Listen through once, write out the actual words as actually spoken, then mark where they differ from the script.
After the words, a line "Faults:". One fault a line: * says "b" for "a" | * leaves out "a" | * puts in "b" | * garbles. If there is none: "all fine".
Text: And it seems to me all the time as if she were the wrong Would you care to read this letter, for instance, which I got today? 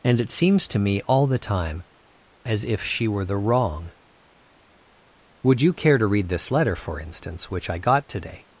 And it seems to me all the time as if she were the wrong Would you care to read this letter, for instance, which I got today?
Faults:
all fine